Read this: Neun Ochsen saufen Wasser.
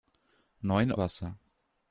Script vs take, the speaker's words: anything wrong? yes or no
yes